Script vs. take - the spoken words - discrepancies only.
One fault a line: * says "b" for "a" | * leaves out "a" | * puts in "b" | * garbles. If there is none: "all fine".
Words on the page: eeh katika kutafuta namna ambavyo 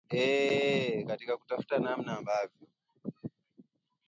all fine